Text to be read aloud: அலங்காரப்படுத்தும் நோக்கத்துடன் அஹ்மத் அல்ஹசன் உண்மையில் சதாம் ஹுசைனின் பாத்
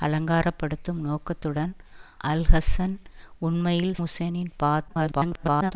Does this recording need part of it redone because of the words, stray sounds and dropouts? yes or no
yes